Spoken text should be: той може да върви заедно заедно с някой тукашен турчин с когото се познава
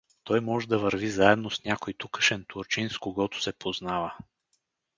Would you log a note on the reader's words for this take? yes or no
yes